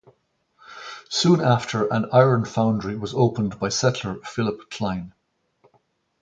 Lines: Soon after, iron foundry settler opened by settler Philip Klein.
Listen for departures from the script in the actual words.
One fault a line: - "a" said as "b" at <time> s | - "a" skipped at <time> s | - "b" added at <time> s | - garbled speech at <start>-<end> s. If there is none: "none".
- "an" added at 1.9 s
- "settler" said as "was" at 3.0 s